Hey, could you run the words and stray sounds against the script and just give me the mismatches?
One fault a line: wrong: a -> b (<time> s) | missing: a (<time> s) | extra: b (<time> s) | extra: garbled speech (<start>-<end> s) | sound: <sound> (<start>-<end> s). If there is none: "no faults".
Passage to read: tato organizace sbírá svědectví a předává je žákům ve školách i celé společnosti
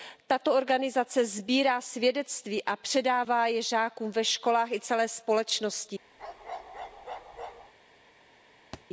sound: bark (6.2-7.7 s)
sound: thud (8.7-8.8 s)